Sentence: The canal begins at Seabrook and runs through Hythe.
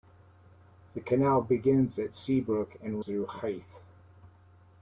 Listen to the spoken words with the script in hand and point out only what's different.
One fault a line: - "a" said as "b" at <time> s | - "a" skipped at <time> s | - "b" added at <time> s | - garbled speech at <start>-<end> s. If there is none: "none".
- "runs" skipped at 3.0 s